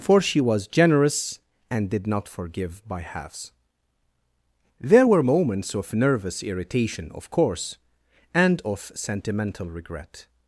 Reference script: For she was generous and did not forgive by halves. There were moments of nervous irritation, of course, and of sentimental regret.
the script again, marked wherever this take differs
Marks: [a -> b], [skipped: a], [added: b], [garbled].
For she was generous and did not forgive by halves. There were moments of nervous irritation, of course, and of sentimental regret.